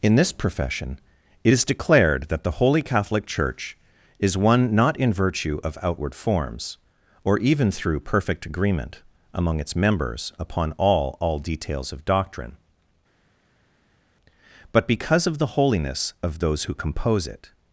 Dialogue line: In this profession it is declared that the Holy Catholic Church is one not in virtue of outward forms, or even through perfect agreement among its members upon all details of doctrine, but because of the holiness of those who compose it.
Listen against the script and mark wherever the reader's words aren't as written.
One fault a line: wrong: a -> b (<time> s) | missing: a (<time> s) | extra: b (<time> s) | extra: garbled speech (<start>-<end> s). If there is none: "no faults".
extra: all (11.2 s)